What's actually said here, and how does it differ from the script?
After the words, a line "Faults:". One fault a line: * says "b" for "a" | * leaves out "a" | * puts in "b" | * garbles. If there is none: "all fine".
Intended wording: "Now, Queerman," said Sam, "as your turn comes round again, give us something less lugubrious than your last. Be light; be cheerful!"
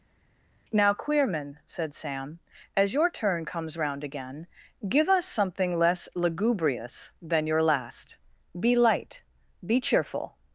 "Now, Queerman," said Sam, "as your turn comes round again, give us something less lugubrious than your last. Be light; be cheerful!"
Faults:
all fine